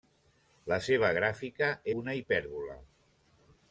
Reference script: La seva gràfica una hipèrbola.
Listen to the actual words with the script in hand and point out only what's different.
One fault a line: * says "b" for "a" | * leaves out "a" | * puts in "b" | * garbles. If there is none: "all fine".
all fine